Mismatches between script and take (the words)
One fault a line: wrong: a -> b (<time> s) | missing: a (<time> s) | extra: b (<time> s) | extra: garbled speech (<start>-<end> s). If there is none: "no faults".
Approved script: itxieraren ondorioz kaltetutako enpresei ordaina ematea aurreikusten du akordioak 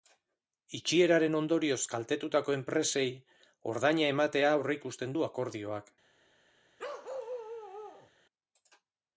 no faults